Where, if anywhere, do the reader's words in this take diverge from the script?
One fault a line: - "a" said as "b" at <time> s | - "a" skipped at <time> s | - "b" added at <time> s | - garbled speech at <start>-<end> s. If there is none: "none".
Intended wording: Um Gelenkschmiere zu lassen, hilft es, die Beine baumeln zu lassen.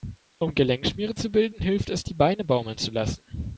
- "lassen" said as "bilden" at 1.3 s